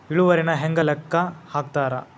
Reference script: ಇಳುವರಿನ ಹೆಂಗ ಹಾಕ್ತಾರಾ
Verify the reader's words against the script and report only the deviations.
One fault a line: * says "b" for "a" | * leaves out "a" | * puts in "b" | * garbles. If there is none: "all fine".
* puts in "ಲೆಕ್ಕ"